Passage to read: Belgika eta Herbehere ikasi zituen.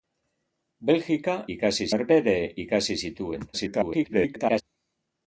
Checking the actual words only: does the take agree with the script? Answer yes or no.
no